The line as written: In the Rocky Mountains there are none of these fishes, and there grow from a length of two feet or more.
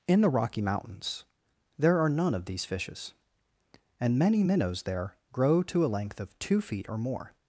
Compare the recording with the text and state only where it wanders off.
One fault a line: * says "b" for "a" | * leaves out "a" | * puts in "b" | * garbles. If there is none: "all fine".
* puts in "many minnows"
* says "to" for "from"